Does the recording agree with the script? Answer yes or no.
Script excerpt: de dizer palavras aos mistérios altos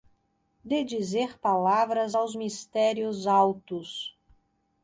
yes